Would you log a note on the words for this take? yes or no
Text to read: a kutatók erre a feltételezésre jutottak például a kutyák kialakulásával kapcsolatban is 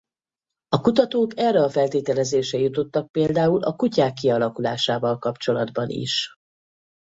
no